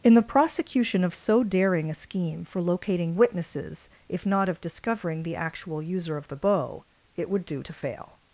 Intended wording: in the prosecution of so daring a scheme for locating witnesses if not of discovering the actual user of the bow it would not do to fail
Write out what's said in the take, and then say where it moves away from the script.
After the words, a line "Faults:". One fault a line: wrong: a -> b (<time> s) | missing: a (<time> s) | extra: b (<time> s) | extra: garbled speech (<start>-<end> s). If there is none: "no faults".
in the prosecution of so daring a scheme for locating witnesses if not of discovering the actual user of the bow it would do to fail
Faults:
missing: not (7.5 s)